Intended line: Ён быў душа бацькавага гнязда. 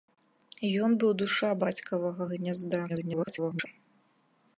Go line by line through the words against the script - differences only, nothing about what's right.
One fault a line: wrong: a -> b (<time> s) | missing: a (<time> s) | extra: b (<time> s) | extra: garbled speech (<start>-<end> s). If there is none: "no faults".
extra: garbled speech (2.9-3.7 s)